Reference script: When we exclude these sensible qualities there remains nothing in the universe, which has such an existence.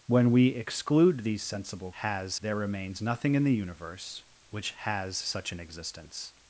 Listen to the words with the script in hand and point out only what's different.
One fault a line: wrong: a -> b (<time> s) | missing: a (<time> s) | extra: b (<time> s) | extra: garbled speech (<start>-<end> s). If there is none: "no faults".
wrong: qualities -> has (1.9 s)